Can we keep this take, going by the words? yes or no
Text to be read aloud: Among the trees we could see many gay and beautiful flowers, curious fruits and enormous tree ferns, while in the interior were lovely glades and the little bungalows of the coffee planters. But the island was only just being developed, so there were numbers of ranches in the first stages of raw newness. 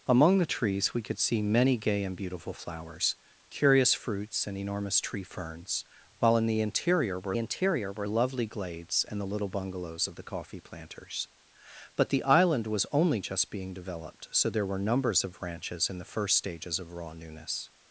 no